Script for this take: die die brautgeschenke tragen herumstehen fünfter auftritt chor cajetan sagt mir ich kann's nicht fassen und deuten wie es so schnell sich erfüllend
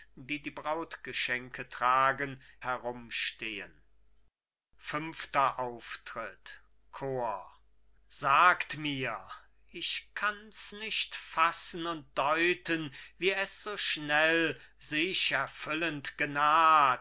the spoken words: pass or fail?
pass